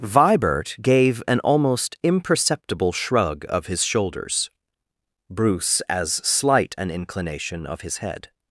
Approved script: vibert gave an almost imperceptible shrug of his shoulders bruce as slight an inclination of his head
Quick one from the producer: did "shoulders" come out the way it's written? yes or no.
yes